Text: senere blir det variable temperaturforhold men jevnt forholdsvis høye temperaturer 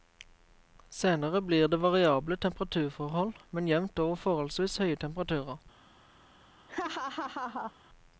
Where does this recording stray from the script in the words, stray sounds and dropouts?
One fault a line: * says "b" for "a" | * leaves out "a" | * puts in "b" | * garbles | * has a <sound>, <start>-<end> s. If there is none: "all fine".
* puts in "over"
* has a laugh, 6.7-7.7 s